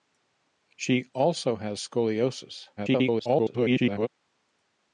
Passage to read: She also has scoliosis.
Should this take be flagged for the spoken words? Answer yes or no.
yes